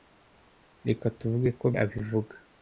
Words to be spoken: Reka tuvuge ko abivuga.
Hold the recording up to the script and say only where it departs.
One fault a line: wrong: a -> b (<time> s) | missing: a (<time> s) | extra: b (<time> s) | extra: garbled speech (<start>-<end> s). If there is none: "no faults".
no faults